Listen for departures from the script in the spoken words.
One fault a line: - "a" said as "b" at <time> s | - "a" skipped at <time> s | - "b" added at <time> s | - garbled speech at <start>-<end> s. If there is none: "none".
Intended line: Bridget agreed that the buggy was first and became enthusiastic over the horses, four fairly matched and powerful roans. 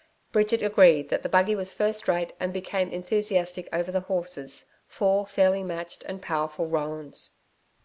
- "rate" added at 2.1 s